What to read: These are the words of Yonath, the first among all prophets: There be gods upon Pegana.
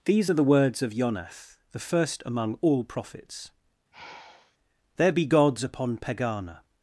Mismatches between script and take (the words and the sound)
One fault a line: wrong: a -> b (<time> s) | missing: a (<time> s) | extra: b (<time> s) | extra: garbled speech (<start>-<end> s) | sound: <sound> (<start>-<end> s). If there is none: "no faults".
sound: sigh (3.9-4.6 s)